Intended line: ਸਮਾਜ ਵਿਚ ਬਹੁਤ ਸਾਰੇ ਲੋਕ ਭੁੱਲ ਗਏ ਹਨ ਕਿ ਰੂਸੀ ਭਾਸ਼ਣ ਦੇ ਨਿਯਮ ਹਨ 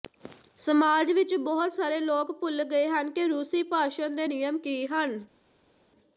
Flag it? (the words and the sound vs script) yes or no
yes